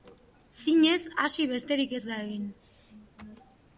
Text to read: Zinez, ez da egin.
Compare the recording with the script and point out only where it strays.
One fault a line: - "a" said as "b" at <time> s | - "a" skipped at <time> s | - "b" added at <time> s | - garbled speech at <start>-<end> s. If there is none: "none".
- "hasi besterik" added at 1.2 s